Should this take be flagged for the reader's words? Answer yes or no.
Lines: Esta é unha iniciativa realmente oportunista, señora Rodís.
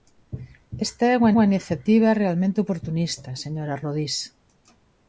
yes